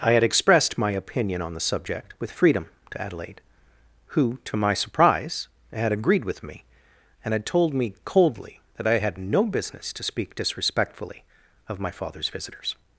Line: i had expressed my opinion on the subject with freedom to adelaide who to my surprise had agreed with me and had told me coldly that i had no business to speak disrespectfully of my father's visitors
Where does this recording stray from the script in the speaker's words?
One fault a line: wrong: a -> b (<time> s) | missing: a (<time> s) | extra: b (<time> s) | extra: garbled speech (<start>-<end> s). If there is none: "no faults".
no faults